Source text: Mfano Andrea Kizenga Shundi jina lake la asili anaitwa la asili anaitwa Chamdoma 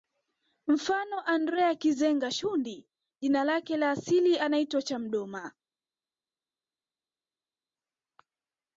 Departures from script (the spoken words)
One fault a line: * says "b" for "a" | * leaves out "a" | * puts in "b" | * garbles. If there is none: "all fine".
* leaves out "la asili anaitwa"